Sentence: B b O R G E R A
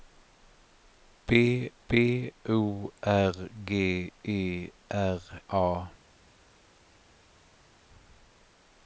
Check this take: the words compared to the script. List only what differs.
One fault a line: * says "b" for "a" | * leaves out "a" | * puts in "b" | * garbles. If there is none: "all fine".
all fine